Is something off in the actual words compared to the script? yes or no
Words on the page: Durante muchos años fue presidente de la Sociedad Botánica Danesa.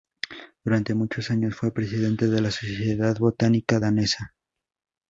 no